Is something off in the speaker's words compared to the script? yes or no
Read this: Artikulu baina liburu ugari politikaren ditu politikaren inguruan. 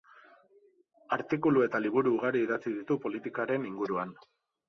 yes